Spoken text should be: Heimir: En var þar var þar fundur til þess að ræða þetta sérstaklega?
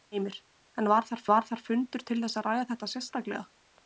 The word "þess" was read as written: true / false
true